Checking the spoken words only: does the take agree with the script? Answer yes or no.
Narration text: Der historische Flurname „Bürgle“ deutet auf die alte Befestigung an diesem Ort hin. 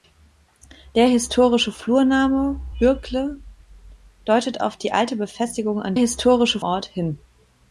no